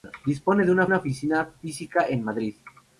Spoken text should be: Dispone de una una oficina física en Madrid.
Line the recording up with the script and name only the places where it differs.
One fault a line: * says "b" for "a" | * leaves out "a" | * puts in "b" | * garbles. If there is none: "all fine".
all fine